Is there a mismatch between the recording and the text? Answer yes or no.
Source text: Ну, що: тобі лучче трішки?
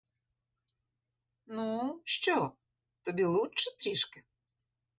no